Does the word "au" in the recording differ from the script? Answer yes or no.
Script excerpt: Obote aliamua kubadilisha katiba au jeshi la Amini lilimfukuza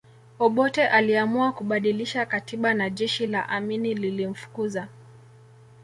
yes